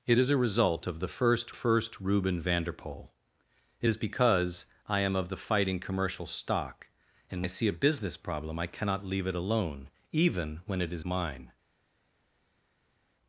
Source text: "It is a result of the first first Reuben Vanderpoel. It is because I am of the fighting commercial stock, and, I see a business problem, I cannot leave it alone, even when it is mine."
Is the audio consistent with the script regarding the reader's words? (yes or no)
yes